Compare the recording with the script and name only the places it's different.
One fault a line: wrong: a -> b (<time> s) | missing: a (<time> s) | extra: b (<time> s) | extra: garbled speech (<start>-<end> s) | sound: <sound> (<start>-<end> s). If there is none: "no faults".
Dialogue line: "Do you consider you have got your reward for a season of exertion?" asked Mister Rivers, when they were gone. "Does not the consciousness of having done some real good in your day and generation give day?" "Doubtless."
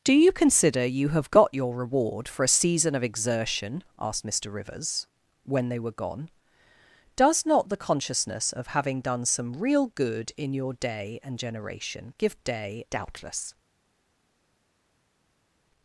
no faults